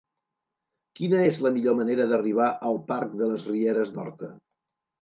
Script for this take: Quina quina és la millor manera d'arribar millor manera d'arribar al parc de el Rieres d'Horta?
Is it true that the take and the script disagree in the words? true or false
true